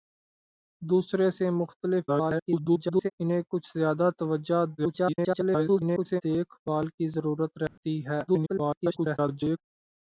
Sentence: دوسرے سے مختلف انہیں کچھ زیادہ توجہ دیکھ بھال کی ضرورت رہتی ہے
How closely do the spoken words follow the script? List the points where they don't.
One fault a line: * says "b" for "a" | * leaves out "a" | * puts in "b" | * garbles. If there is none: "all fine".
* garbles
* garbles
* garbles